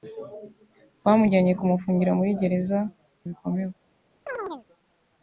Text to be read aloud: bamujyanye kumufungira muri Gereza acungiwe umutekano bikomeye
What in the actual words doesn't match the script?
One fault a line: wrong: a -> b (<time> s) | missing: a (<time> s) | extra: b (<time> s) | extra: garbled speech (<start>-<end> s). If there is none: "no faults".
missing: acungiwe umutekano (2.8 s)